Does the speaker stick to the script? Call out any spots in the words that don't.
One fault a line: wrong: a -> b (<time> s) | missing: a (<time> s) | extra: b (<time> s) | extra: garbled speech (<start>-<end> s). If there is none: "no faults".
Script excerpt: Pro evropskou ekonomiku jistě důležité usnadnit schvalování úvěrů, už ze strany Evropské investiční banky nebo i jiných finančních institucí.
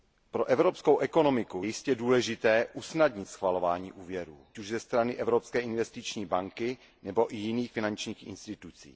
no faults